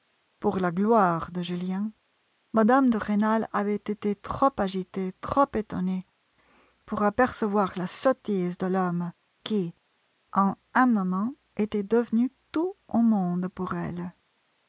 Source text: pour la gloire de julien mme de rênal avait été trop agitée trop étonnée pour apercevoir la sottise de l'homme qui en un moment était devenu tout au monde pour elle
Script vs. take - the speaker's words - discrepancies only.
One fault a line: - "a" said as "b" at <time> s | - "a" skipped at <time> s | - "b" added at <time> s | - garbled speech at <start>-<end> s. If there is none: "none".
none